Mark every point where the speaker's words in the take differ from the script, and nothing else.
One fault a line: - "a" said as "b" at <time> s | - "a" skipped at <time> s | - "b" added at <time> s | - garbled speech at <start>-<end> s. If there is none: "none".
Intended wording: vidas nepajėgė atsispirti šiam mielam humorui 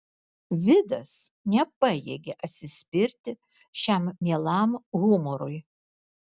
none